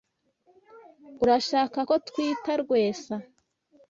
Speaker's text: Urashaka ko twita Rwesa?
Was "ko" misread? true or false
false